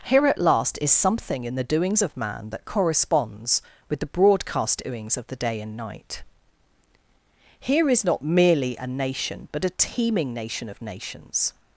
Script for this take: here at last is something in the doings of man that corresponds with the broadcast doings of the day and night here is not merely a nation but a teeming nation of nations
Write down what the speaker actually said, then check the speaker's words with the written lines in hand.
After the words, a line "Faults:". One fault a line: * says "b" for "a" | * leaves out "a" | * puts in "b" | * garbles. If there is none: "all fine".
here at last is something in the doings of man that corresponds with the broadcast doings of the day and night here is not merely a nation but a teeming nation of nations
Faults:
all fine